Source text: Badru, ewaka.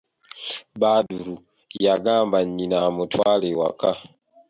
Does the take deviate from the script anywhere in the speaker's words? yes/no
yes